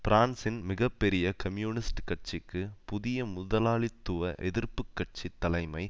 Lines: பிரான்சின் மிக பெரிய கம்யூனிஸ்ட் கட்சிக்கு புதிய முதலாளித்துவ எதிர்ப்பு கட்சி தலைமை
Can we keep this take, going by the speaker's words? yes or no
yes